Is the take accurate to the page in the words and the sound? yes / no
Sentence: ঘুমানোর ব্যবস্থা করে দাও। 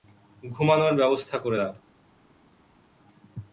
yes